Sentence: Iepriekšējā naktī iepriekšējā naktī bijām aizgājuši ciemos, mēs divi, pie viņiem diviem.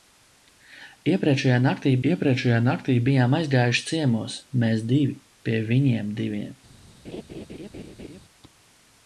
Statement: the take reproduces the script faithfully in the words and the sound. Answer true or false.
false